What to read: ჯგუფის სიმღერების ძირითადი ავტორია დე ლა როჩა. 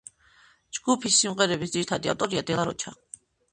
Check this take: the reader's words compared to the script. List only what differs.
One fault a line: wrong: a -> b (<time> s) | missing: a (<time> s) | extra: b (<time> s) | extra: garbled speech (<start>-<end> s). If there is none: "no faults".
no faults